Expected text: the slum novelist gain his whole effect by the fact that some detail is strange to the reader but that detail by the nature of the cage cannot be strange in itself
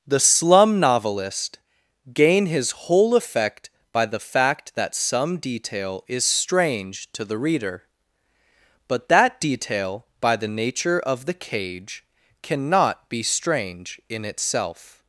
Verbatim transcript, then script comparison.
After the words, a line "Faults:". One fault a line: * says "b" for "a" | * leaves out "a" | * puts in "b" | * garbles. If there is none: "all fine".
the slum novelist gain his whole effect by the fact that some detail is strange to the reader but that detail by the nature of the cage cannot be strange in itself
Faults:
all fine